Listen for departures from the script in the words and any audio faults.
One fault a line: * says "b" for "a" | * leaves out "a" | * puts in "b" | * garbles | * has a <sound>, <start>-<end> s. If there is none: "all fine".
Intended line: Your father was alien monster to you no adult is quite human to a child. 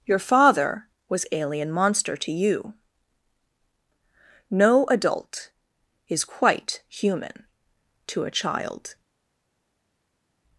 all fine